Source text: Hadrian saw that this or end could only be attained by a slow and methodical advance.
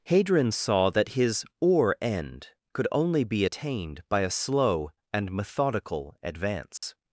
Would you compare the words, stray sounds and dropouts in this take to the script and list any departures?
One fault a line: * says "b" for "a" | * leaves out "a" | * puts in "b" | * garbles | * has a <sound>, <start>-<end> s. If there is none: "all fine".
* says "his" for "this"
* has a dropout, 6.8-6.8 s